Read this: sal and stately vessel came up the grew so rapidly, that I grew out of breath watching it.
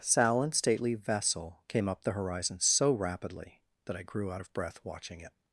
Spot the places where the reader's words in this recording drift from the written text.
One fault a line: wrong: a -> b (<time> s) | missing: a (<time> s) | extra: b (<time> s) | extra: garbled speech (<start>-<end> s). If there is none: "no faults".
wrong: grew -> horizon (2.1 s)